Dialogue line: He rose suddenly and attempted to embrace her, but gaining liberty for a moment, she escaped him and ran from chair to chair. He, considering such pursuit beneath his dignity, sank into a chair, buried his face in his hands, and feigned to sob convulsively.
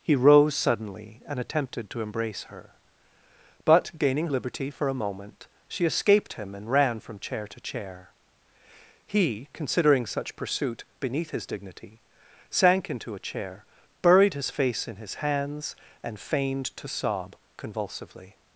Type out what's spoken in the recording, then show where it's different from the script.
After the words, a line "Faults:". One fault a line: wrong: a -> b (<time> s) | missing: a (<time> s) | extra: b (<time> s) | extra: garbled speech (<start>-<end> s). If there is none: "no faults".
He rose suddenly and attempted to embrace her, but gaining liberty for a moment, she escaped him and ran from chair to chair. He, considering such pursuit beneath his dignity, sank into a chair, buried his face in his hands, and feigned to sob convulsively.
Faults:
no faults